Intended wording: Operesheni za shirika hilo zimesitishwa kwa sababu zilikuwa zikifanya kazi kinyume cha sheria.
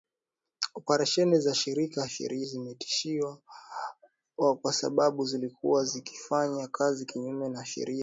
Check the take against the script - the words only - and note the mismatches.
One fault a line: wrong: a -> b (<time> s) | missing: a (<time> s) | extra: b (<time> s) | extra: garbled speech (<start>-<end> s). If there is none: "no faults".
wrong: hilo -> sheria (2.1 s)